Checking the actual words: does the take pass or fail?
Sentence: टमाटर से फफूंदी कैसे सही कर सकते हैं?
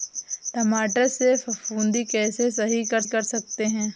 fail